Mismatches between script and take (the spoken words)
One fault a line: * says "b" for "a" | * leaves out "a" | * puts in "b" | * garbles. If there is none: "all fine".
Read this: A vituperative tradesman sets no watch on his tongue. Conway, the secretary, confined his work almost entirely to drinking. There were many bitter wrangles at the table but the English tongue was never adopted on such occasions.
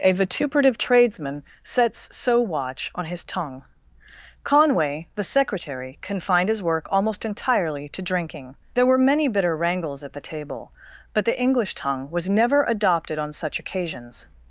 * says "so" for "no"